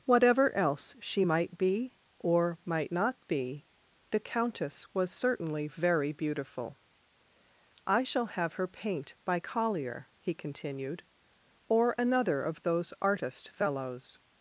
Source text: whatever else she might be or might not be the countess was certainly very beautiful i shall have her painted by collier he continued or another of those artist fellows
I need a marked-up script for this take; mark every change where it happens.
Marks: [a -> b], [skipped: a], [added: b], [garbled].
whatever else she might be or might not be the countess was certainly very beautiful i shall have her [painted -> paint] by collier he continued or another of those artist fellows